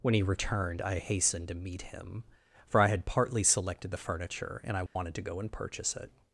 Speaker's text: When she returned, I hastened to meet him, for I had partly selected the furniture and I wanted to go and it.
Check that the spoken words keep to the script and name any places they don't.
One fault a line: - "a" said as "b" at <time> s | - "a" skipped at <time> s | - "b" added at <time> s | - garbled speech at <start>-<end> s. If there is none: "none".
- "she" said as "he" at 0.1 s
- "purchase" added at 5.5 s